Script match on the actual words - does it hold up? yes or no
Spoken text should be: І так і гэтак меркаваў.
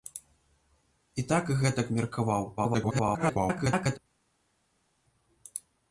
no